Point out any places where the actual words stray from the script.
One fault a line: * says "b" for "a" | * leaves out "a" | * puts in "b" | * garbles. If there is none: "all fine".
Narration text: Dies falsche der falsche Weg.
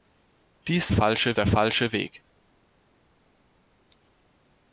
all fine